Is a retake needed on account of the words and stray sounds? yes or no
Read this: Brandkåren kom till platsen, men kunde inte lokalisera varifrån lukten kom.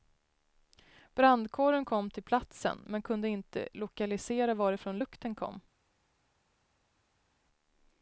no